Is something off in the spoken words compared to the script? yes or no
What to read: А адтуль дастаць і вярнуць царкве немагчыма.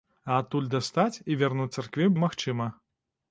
no